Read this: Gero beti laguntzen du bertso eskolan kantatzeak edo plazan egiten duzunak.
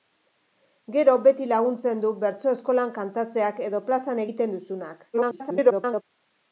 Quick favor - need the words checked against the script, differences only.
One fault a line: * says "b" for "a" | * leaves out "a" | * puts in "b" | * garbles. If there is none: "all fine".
* garbles